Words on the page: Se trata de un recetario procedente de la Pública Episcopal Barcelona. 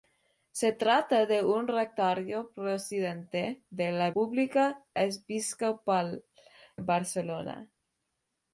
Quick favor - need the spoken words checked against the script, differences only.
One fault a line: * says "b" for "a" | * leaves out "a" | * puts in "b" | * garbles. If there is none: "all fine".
all fine